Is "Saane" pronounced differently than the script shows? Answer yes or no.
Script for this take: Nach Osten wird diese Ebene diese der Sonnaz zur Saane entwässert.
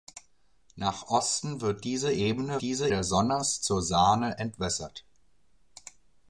no